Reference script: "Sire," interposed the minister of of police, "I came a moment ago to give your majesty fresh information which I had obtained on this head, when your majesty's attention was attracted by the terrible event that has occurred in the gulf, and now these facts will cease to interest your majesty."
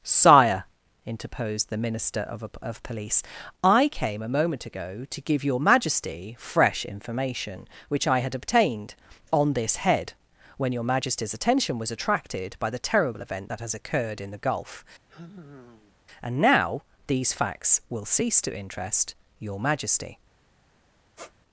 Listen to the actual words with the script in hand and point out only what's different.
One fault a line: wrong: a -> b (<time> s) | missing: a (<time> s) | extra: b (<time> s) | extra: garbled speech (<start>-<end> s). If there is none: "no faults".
no faults